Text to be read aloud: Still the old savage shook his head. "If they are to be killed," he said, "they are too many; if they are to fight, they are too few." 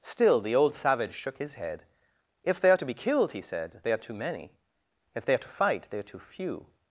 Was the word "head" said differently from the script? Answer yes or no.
no